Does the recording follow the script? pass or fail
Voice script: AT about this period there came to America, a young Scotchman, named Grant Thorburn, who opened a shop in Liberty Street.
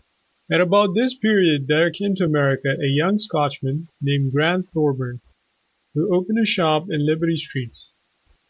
pass